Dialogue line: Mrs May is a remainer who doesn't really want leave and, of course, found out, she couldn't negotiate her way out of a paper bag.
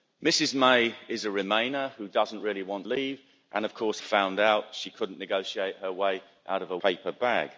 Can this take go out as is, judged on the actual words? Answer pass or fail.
pass